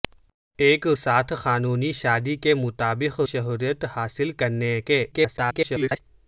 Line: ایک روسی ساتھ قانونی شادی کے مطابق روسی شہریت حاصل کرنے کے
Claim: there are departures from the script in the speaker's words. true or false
true